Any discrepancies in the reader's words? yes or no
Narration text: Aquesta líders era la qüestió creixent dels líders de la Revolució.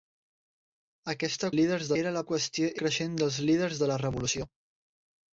no